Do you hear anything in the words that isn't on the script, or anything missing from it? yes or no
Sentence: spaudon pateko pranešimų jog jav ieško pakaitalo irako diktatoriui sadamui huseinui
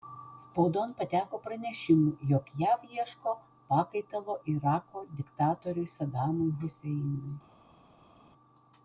no